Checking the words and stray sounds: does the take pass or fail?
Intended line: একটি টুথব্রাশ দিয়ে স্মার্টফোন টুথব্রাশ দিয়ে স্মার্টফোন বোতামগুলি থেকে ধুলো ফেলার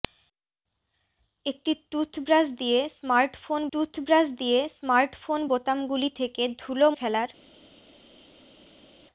pass